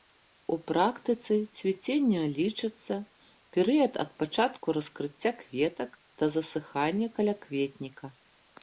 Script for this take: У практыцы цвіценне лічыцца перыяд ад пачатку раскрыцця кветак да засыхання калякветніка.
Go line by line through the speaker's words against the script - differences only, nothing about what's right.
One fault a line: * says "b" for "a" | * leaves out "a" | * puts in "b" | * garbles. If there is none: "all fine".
all fine